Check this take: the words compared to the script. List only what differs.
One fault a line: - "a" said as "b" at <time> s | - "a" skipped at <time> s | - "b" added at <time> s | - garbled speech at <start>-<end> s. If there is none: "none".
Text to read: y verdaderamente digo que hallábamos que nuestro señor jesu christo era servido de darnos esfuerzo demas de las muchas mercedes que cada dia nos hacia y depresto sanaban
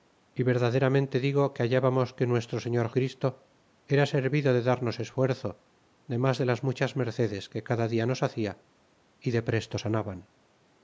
- "jesu" skipped at 2.9 s